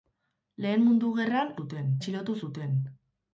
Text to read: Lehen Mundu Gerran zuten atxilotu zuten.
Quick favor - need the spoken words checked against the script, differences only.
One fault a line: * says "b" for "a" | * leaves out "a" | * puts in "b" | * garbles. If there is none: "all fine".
all fine